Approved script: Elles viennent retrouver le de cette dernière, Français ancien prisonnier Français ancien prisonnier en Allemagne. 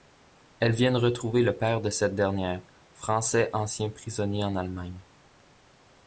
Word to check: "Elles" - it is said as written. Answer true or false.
true